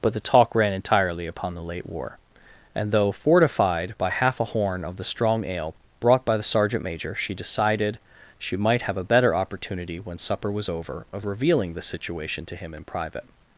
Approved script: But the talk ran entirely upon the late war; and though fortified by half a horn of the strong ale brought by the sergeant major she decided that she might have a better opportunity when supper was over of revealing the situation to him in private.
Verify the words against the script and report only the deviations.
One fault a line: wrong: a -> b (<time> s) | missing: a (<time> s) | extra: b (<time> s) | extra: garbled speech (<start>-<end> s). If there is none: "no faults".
missing: that (8.0 s)